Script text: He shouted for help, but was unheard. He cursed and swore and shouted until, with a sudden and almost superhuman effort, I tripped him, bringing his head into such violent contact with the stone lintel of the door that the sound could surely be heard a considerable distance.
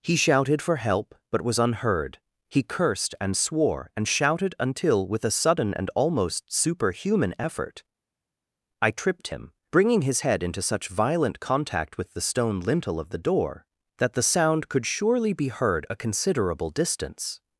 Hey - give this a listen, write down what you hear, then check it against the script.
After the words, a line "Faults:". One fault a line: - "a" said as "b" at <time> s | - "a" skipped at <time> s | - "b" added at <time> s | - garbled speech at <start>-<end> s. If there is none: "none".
He shouted for help, but was unheard. He cursed and swore and shouted until, with a sudden and almost superhuman effort, I tripped him, bringing his head into such violent contact with the stone lintel of the door that the sound could surely be heard a considerable distance.
Faults:
none